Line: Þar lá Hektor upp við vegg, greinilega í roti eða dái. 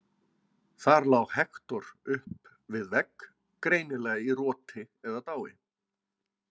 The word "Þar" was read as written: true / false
true